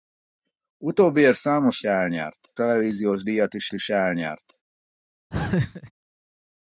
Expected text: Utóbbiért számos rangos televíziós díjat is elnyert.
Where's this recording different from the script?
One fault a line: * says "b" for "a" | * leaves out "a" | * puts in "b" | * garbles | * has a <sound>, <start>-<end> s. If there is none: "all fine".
* says "elnyert" for "rangos"
* puts in "is"
* has a laugh, 5.3-5.9 s